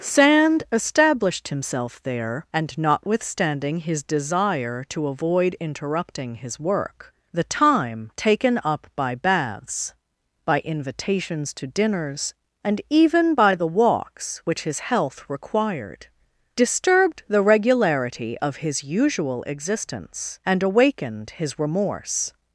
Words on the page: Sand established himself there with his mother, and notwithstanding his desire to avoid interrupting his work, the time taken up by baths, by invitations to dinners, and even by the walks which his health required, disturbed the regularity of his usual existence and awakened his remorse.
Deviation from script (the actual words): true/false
true